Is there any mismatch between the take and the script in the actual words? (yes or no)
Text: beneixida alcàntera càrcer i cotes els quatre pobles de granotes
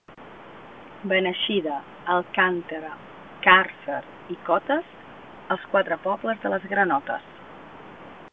yes